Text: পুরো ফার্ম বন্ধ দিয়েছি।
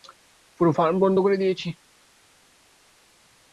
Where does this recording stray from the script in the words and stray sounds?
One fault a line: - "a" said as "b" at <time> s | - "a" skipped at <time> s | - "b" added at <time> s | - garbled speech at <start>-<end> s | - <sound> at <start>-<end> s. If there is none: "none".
- "করে" added at 1.2 s